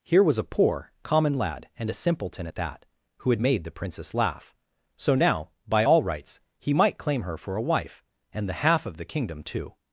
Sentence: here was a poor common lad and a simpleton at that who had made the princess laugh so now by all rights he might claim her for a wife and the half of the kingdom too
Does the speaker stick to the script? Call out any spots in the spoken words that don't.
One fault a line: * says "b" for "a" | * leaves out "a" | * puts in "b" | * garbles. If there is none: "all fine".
all fine